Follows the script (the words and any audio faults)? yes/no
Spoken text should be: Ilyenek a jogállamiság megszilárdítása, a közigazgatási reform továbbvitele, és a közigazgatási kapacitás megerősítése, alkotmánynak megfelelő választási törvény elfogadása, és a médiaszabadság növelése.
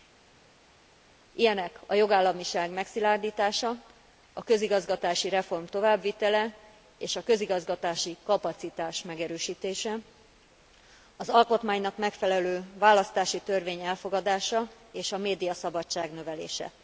no